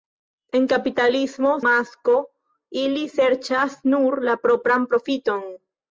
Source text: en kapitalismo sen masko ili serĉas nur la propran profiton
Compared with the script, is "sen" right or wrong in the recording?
wrong